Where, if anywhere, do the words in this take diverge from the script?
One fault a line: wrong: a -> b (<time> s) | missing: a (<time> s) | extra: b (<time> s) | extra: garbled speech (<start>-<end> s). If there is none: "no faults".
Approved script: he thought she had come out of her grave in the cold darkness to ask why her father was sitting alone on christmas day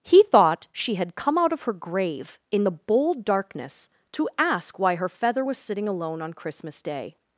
wrong: cold -> bold (2.7 s)
wrong: father -> feather (5.1 s)